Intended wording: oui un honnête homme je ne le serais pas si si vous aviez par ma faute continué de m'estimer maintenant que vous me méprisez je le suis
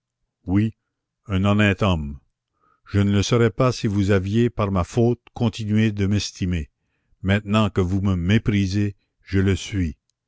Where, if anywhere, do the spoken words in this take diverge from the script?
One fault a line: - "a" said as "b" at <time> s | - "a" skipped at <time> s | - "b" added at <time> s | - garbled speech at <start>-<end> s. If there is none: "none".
- "si" skipped at 3.9 s